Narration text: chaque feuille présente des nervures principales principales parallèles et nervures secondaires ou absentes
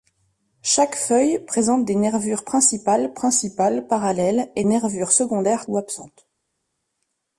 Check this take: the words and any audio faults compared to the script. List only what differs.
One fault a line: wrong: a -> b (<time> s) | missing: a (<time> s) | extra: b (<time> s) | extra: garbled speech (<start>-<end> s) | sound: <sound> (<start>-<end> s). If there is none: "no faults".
no faults